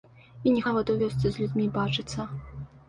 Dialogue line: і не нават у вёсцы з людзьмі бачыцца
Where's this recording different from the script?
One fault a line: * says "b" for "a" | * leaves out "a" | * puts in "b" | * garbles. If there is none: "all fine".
all fine